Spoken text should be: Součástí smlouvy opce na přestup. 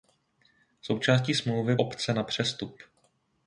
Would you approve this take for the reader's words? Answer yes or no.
yes